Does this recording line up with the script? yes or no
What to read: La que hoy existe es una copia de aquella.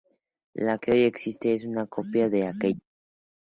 yes